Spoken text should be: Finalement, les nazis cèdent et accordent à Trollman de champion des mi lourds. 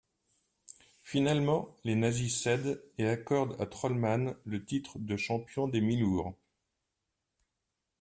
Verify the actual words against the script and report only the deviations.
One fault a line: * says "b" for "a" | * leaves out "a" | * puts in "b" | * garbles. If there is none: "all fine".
* puts in "le titre"